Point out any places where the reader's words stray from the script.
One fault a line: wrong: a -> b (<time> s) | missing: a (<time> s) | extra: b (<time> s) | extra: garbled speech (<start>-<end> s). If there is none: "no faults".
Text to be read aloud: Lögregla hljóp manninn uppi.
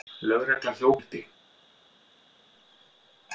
missing: manninn (1.0 s)